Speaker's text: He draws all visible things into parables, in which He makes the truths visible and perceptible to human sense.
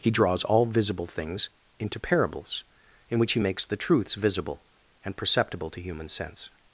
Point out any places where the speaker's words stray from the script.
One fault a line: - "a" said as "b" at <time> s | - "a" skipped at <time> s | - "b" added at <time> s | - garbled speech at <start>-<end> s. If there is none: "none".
none